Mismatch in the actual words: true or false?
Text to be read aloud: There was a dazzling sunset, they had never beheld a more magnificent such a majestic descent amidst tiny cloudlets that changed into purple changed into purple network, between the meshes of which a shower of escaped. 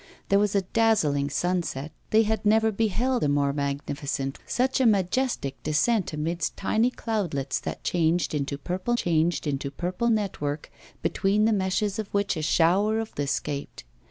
false